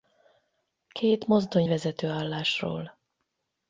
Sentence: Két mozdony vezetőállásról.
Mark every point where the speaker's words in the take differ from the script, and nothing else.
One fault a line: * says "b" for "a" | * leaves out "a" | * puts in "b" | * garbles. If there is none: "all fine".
all fine